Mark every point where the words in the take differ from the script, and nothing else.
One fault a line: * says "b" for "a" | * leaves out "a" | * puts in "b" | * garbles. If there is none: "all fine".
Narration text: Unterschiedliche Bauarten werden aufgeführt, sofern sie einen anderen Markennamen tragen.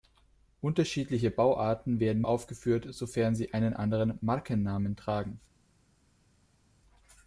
all fine